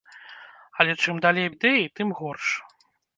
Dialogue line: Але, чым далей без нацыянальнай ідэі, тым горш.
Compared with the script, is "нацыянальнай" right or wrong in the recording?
wrong